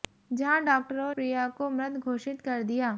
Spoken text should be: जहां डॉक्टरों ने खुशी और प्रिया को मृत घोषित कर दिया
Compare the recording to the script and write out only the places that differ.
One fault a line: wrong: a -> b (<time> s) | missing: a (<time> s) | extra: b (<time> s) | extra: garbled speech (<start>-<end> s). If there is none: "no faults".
missing: ने खुशी और (1.1 s)